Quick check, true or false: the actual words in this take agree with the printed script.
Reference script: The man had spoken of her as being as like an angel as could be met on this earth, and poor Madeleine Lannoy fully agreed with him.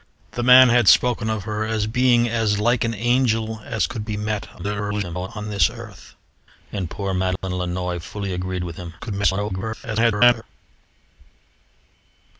false